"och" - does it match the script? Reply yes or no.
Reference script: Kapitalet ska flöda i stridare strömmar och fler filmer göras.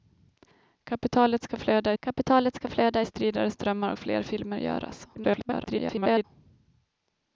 no